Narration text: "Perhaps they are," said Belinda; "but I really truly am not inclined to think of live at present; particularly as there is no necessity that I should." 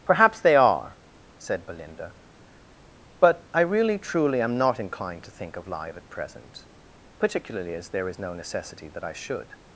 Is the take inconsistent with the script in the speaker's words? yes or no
no